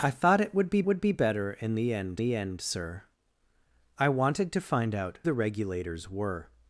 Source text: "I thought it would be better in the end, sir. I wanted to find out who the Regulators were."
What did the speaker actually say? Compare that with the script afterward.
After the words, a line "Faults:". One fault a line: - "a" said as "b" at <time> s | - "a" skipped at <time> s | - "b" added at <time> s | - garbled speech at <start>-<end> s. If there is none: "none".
"I thought it would be would be better in the end the end, sir. I wanted to find out the Regulators were."
Faults:
- "would be" added at 0.9 s
- "the end" added at 2.2 s
- "who" skipped at 5.2 s